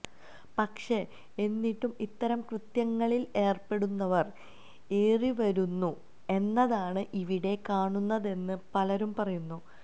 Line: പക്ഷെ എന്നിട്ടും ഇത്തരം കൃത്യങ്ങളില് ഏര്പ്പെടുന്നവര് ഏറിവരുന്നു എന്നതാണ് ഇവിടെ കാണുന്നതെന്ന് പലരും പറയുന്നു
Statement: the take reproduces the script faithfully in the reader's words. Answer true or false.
true